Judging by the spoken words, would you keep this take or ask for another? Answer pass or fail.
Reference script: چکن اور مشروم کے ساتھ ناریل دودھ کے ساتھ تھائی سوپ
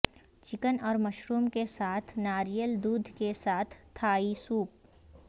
pass